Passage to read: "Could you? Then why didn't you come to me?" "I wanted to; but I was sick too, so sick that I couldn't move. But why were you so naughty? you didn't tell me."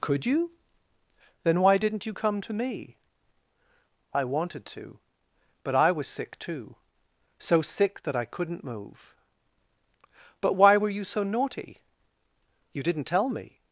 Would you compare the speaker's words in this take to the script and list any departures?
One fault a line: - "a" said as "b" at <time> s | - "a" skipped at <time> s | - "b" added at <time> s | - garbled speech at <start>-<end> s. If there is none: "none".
none